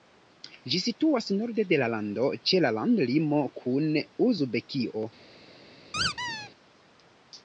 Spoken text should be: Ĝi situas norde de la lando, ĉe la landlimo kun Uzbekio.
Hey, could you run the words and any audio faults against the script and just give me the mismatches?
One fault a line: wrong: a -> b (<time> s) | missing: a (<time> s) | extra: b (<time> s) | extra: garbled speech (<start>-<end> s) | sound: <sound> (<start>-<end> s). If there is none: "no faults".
sound: squeak (5.9-6.5 s)